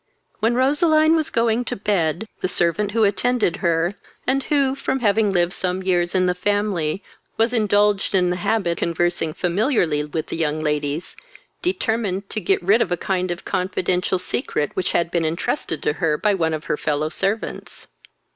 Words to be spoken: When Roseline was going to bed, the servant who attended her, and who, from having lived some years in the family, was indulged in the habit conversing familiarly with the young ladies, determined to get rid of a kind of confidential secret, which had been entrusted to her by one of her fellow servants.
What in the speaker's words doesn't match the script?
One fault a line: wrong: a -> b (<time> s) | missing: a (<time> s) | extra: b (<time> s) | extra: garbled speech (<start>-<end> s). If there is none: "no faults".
no faults